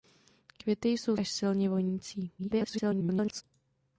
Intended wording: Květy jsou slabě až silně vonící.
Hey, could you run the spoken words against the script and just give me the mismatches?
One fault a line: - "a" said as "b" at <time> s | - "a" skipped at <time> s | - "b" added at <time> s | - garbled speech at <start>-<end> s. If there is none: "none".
- "slabě" skipped at 1.2 s
- garbled speech at 2.4-3.4 s